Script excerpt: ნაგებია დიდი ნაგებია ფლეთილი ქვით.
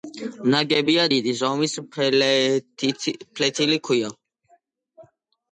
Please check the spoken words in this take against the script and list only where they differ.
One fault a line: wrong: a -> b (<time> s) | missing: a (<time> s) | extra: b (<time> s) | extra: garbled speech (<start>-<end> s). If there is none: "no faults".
wrong: ნაგებია -> ზომის (1.4 s)